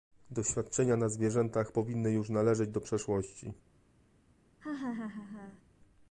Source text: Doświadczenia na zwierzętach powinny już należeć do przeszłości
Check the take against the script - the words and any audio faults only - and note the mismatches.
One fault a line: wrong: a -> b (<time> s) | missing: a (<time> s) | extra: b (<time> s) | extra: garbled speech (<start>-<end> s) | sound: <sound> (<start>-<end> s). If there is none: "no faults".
sound: laugh (4.6-5.6 s)